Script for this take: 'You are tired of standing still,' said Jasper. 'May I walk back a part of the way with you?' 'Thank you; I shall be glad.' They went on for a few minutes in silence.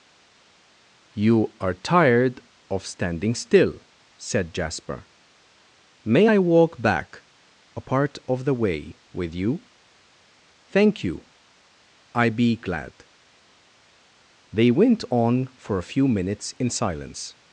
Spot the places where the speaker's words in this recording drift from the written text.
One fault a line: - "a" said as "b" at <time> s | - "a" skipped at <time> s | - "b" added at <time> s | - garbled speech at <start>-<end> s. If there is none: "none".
- "shall" skipped at 12.3 s